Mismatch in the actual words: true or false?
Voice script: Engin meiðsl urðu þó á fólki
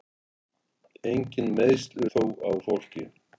true